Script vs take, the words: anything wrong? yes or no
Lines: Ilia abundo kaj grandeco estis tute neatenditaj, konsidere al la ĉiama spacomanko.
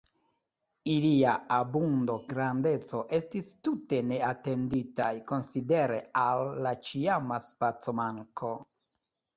yes